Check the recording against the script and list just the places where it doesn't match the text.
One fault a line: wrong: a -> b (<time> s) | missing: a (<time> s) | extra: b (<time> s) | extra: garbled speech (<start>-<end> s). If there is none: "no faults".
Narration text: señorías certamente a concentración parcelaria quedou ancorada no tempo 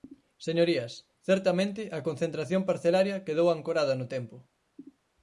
no faults